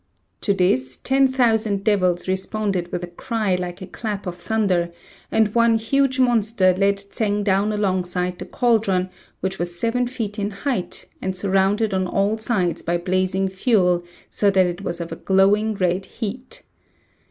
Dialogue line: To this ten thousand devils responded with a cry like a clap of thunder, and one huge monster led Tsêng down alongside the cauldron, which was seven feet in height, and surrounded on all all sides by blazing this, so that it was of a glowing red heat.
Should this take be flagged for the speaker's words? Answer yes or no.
yes